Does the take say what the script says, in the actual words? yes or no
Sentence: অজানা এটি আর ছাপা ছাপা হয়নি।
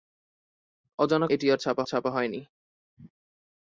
yes